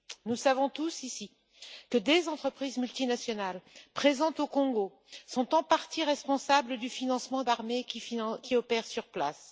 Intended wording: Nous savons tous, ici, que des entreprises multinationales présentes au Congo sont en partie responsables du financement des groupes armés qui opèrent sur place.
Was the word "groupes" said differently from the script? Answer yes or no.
yes